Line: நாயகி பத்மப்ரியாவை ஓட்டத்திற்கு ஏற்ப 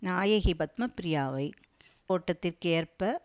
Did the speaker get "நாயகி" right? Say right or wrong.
right